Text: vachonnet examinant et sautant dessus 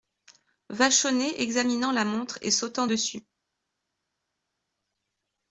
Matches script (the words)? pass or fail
fail